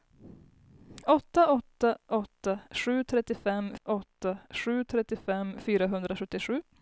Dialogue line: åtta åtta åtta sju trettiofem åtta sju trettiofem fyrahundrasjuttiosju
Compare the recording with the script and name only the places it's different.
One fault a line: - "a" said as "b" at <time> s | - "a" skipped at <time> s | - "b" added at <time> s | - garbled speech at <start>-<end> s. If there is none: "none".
none